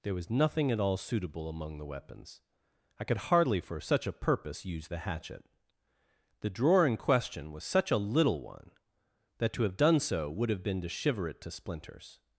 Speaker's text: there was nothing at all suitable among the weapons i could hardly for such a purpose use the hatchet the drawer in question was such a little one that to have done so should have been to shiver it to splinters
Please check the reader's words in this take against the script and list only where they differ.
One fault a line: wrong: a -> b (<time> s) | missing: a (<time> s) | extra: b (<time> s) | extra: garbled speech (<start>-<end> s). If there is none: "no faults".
wrong: should -> would (10.3 s)